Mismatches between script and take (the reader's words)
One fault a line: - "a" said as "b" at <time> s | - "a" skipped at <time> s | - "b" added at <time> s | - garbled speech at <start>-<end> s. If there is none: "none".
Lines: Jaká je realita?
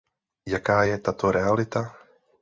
- "tato" added at 1.0 s